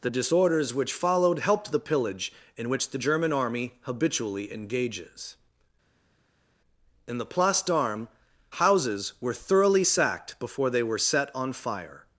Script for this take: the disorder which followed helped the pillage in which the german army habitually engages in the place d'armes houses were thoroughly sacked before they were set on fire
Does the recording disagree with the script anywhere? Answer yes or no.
yes